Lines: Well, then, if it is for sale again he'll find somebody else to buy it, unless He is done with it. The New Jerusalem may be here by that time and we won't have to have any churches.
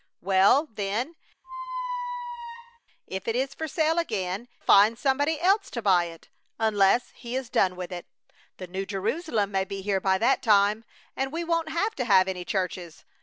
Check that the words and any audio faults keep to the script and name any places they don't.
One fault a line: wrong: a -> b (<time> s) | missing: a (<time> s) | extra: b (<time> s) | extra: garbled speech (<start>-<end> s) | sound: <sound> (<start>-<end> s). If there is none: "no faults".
sound: squeak (1.4-2.8 s)
missing: he'll (4.5 s)